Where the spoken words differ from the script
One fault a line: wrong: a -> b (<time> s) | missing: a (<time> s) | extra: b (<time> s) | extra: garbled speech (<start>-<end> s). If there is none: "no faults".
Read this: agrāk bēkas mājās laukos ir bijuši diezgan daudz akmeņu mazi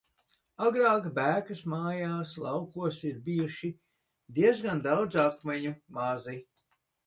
no faults